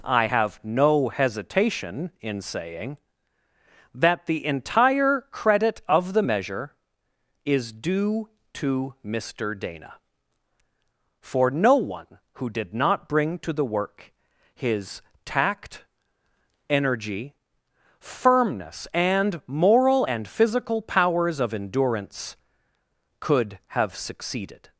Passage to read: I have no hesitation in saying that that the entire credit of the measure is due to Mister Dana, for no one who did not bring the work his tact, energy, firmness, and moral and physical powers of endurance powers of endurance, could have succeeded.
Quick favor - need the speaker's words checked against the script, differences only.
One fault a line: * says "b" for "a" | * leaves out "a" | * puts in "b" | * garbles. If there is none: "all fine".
* leaves out "that"
* puts in "to"
* leaves out "powers of endurance"